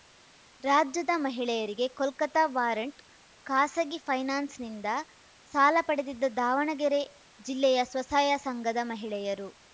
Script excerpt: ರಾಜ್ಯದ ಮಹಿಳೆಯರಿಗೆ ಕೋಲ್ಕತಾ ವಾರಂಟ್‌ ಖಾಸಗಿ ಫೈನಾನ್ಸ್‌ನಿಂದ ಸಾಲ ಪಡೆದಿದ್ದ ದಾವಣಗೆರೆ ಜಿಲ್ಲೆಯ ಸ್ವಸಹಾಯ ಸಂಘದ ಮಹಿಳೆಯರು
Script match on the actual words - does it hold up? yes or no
yes